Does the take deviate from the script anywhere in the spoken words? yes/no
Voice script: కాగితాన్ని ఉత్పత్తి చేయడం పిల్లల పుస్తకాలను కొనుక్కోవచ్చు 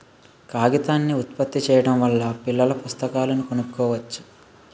yes